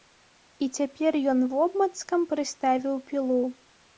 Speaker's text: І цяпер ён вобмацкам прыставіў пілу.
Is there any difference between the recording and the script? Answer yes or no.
no